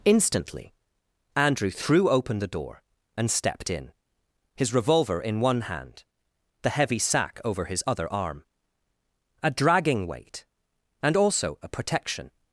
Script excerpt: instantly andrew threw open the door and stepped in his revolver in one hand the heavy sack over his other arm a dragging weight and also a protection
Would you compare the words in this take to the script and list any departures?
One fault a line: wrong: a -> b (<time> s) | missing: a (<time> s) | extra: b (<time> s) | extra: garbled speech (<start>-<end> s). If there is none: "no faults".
no faults